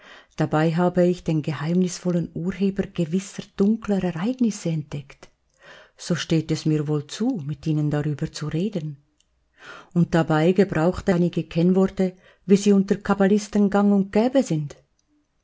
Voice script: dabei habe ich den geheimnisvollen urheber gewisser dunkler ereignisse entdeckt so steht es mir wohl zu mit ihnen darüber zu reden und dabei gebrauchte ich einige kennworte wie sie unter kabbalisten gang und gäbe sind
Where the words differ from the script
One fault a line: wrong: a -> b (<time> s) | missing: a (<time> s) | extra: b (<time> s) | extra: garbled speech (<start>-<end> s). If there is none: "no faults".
missing: ich (11.1 s)